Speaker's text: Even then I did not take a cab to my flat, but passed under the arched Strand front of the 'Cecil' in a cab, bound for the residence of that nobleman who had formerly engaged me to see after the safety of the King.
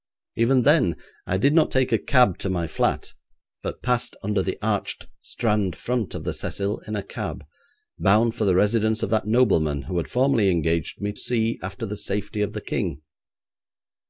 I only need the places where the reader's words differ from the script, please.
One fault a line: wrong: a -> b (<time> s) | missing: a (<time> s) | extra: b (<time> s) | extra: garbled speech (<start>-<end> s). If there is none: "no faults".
missing: to (11.1 s)